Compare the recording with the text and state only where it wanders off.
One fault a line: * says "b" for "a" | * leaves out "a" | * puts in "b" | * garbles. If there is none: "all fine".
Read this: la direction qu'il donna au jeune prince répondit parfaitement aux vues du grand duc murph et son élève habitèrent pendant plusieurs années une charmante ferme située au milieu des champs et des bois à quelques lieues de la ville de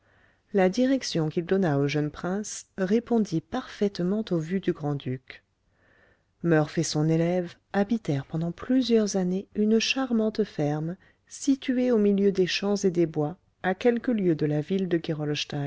all fine